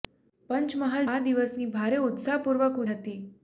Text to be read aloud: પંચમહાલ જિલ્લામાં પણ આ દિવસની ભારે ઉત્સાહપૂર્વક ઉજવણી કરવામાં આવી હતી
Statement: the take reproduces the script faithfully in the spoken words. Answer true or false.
false